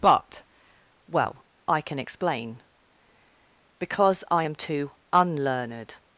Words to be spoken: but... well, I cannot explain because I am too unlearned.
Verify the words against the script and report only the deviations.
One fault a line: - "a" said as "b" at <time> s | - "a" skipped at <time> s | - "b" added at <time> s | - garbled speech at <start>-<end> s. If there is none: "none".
- "cannot" said as "can" at 1.8 s